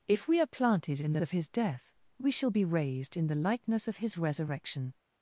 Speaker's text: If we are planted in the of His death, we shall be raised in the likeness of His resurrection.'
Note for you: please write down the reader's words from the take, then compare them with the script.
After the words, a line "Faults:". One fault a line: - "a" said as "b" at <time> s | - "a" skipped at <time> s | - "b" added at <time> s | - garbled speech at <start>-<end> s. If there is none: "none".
If we are planted in the of His death, we shall be raised in the likeness of His resurrection.'
Faults:
none